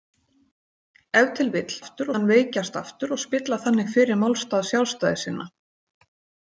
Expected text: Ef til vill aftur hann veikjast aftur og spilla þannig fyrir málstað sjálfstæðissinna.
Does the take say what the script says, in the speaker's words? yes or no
yes